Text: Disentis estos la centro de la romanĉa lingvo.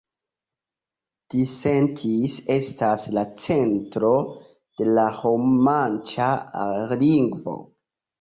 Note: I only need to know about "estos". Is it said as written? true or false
false